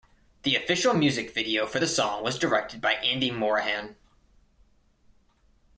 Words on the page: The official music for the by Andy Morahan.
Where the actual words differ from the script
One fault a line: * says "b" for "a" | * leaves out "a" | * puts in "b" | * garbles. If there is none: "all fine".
* puts in "video"
* puts in "song was directed"